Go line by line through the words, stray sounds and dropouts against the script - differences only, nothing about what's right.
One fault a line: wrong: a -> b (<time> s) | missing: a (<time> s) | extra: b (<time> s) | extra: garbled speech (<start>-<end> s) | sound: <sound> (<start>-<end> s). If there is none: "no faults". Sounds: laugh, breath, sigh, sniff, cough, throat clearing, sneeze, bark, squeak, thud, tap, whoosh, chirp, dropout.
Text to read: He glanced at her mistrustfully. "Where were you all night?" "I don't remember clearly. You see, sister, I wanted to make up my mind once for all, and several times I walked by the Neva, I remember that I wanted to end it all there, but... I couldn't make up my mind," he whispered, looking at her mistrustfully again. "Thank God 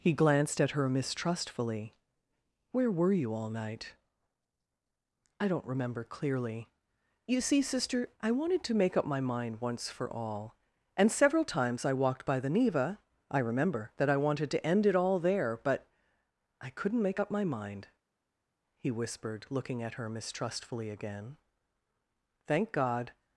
no faults